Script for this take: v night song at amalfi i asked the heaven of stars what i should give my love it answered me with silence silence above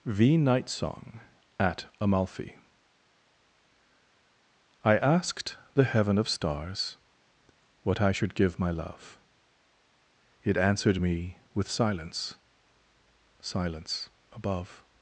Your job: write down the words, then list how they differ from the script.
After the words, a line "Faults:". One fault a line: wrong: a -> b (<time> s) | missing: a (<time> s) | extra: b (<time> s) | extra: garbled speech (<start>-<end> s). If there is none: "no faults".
v night song at amalfi i asked the heaven of stars what i should give my love it answered me with silence silence above
Faults:
no faults